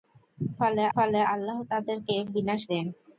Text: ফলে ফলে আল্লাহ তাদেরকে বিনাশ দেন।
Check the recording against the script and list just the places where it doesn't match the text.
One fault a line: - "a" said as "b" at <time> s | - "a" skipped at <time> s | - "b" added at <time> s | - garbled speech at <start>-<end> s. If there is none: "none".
none